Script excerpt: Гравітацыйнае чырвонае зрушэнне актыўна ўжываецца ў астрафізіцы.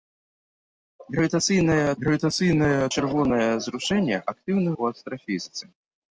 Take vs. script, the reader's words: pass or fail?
fail